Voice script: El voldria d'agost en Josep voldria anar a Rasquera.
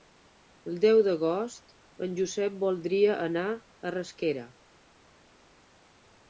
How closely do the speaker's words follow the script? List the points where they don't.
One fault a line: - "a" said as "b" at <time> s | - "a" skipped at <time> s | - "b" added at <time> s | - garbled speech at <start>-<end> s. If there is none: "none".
- "voldria" said as "deu" at 0.8 s